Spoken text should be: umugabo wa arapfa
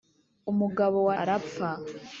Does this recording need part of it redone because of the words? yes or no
no